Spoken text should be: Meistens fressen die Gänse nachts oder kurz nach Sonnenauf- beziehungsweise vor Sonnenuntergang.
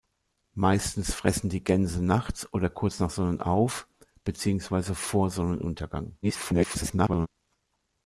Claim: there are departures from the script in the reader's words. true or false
true